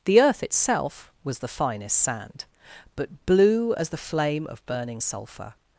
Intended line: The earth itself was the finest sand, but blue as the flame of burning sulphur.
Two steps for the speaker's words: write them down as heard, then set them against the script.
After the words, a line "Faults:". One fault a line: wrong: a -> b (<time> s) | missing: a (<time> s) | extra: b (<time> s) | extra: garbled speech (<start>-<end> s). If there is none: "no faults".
The earth itself was the finest sand, but blue as the flame of burning sulphur.
Faults:
no faults